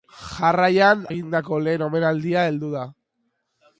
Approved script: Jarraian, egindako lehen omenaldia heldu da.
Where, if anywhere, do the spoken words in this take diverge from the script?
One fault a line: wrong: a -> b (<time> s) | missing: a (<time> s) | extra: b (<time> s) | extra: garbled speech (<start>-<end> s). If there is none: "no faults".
no faults